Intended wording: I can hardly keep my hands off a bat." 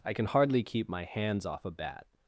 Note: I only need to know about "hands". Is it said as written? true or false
true